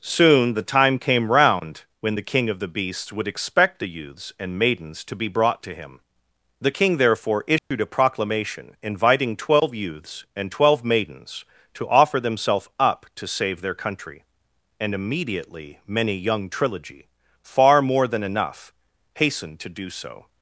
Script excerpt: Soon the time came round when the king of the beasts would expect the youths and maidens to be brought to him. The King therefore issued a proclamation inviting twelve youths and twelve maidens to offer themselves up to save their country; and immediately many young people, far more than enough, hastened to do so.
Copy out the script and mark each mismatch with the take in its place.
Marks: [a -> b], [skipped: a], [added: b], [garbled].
Soon the time came round when the king of the beasts would expect the youths and maidens to be brought to him. The King therefore issued a proclamation inviting twelve youths and twelve maidens to offer themselves up to save their country; and immediately many young [people, -> trilogy] far more than enough, hastened to do so.